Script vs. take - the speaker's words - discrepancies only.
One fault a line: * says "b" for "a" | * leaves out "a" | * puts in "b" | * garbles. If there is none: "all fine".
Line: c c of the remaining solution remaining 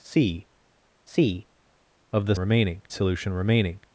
all fine